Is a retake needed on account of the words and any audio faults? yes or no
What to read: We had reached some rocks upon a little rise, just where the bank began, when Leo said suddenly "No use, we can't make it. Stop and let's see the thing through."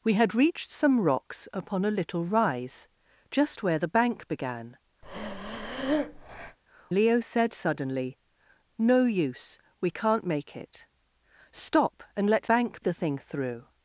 yes